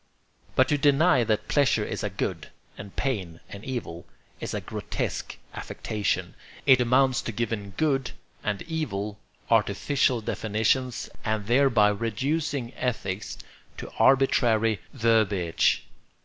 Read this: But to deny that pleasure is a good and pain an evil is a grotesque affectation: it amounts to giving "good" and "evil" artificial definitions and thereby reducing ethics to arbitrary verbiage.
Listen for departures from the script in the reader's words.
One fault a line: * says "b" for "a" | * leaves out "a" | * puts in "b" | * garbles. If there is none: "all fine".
all fine